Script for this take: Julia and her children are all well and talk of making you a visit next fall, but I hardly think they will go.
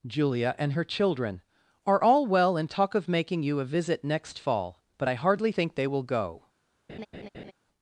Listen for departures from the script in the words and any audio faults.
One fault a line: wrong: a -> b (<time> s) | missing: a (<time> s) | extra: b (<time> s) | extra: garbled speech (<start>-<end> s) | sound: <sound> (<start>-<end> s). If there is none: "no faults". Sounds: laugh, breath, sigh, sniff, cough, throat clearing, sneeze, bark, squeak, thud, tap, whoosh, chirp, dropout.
sound: laugh (6.9-7.5 s)